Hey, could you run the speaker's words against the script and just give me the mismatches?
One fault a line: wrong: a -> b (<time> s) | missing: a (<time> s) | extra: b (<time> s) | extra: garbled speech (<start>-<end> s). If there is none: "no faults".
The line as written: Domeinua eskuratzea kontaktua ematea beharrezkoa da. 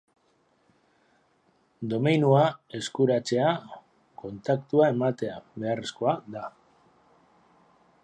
no faults